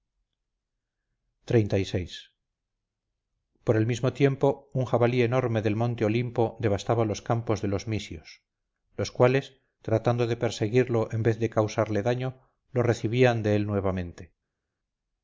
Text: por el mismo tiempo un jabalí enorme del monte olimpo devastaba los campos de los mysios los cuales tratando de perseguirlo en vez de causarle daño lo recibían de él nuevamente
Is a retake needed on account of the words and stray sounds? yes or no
no